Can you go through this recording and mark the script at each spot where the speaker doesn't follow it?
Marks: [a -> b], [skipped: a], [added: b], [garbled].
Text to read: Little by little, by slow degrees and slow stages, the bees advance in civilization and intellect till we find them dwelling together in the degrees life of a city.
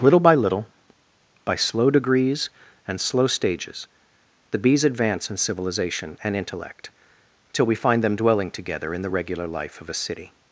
Little by little, by slow degrees and slow stages, the bees advance in civilization and intellect till we find them dwelling together in the [degrees -> regular] life of a city.